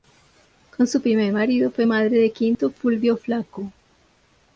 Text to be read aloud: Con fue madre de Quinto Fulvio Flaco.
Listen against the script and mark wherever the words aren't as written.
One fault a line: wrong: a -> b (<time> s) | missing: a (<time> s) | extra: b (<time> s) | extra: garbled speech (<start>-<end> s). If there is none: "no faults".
extra: su primer marido (0.9 s)